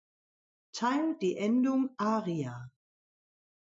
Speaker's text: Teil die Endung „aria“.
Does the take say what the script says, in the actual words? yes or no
yes